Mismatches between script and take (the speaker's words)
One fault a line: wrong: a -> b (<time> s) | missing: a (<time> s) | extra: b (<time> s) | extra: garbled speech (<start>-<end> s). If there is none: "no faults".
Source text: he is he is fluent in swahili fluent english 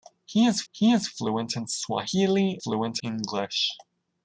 no faults